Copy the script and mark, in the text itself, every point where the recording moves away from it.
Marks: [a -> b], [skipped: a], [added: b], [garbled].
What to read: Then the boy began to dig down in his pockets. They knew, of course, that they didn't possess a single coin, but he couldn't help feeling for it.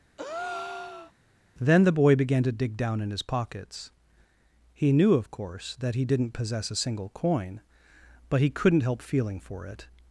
Then the boy began to dig down in his pockets. [They -> He] knew, of course, that [they -> he] didn't possess a single coin, but he couldn't help feeling for it.